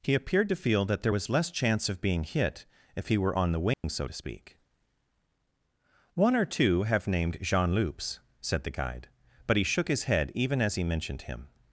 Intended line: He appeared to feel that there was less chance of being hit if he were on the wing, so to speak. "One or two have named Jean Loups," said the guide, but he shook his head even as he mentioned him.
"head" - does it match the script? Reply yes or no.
yes